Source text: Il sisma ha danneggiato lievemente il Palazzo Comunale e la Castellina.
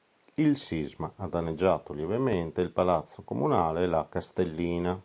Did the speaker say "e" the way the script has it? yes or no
yes